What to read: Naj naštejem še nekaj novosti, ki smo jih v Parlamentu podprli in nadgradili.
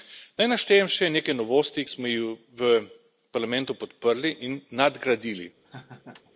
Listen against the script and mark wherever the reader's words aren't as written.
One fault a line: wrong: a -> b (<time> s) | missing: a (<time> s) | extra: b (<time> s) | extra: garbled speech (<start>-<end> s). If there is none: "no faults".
missing: ki (1.8 s)